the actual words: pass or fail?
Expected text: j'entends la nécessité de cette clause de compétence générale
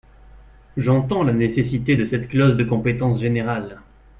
pass